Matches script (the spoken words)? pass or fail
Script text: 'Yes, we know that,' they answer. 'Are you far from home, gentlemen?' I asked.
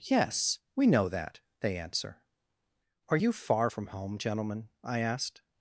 pass